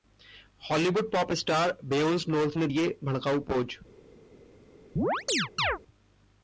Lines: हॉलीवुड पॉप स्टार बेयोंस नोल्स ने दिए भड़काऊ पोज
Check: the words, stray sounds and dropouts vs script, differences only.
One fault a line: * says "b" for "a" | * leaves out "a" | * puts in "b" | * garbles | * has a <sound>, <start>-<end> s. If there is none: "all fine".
* has a chirp, 5.0-5.8 s